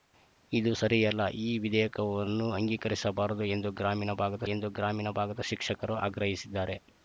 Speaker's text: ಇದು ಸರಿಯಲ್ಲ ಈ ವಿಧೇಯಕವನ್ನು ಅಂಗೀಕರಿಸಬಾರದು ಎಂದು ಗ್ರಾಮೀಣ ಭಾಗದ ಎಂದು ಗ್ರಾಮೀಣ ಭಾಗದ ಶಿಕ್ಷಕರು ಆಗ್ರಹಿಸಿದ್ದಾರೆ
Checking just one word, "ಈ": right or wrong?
right